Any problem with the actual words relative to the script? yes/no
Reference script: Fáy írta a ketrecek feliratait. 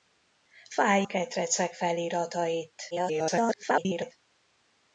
yes